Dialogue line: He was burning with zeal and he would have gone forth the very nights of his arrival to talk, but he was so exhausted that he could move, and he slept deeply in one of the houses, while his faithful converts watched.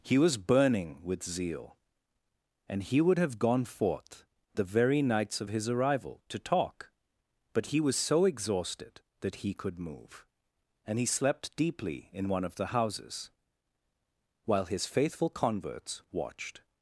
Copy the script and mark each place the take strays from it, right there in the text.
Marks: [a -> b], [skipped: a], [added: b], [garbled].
He was burning with zeal and he would have gone forth the very nights of his arrival to talk, but he was so exhausted that he could move, and he slept deeply in one of the houses, while his faithful converts watched.